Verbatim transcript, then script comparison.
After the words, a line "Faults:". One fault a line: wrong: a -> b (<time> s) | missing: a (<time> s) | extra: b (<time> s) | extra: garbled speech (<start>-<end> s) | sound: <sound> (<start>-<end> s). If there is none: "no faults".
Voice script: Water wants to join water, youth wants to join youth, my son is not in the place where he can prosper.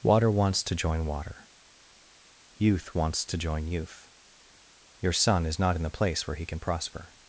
Water wants to join water, youth wants to join youth, your son is not in the place where he can prosper.
Faults:
wrong: my -> your (5.0 s)